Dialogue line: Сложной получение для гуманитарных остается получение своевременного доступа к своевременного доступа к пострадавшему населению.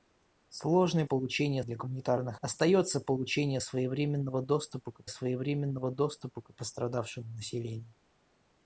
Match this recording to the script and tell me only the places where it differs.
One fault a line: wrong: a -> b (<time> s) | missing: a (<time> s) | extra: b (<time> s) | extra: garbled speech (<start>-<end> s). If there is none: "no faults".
no faults